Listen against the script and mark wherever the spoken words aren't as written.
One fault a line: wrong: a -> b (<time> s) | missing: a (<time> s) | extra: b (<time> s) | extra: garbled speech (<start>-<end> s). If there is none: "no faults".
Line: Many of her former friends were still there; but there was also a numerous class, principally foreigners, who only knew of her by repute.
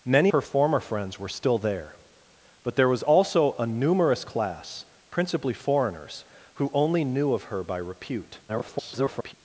missing: of (0.3 s)
extra: garbled speech (8.5-9.3 s)